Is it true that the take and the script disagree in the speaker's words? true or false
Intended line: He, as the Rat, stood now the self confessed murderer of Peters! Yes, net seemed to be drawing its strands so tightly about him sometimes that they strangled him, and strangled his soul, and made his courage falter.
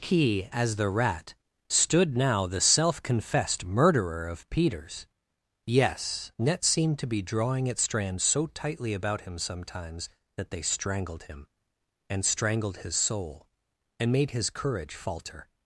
false